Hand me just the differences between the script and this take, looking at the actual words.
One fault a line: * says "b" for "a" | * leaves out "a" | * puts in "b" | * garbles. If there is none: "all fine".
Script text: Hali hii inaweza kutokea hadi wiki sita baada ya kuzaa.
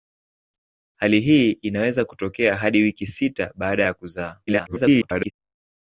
* garbles